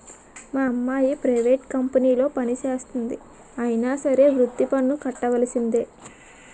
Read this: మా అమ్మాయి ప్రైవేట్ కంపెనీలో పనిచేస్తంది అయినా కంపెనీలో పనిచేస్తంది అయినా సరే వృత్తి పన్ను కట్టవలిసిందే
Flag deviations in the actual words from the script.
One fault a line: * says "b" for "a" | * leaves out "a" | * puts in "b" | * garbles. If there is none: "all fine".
* leaves out "కంపెనీలో పనిచేస్తంది అయినా"